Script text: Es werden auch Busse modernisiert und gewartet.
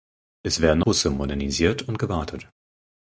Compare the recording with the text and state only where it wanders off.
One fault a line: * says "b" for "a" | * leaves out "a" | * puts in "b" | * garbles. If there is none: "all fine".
* leaves out "auch"